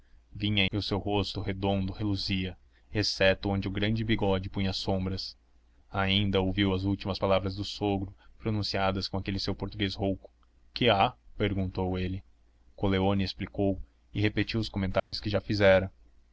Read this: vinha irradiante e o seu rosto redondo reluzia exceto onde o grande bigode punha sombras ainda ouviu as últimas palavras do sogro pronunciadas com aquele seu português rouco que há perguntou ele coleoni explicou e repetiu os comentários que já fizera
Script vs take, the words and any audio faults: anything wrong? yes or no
yes